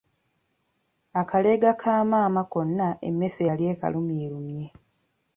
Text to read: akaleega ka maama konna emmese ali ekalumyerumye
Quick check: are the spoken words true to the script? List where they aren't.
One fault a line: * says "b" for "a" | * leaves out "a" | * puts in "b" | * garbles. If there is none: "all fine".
* says "yali" for "ali"